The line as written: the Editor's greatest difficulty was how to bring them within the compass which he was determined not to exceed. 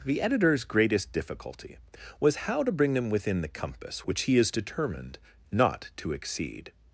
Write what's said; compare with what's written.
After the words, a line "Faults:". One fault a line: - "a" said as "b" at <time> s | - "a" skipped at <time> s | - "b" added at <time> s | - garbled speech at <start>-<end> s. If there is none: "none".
the Editor's greatest difficulty was how to bring them within the compass which he is determined not to exceed.
Faults:
- "was" said as "is" at 4.4 s